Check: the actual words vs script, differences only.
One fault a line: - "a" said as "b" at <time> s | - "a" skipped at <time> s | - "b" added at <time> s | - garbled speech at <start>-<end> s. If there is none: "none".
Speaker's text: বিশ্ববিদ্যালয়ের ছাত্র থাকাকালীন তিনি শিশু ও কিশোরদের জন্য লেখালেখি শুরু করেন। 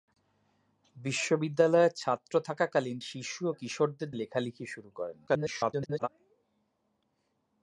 - "তিনি" skipped at 3.0 s
- "জন্য" skipped at 4.1 s
- garbled speech at 5.3-6.1 s